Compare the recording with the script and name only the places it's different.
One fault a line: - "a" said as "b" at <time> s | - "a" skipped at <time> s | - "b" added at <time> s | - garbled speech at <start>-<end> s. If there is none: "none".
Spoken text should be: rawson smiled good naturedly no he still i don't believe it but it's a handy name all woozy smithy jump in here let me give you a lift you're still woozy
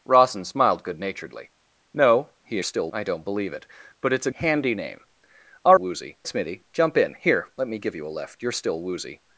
none